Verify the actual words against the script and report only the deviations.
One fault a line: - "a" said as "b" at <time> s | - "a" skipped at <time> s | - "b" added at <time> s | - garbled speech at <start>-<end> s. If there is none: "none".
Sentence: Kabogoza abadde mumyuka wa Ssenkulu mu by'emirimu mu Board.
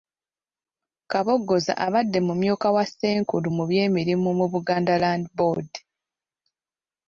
- "Buganda Land" added at 4.5 s